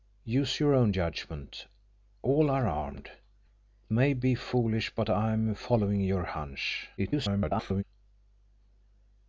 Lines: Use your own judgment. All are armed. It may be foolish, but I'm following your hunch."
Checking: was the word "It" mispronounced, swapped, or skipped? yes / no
yes